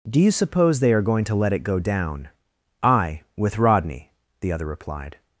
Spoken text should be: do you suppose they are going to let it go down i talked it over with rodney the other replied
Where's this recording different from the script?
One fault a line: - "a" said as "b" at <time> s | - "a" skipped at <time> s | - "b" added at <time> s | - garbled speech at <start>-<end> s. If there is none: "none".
- "talked it over" skipped at 3.2 s